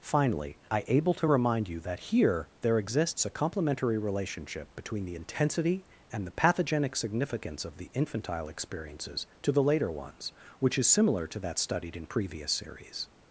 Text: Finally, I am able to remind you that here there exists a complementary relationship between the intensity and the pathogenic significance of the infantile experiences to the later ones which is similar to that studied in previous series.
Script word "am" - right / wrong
wrong